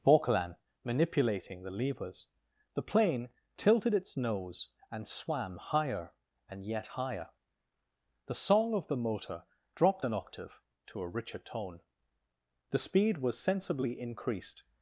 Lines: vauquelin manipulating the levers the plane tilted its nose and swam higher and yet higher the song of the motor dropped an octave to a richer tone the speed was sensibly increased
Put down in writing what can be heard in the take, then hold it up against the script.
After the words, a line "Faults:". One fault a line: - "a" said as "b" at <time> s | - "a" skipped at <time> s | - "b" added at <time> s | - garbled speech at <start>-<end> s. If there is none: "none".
vauquelin manipulating the levers the plane tilted its nose and swam higher and yet higher the song of the motor dropped an octave to a richer tone the speed was sensibly increased
Faults:
none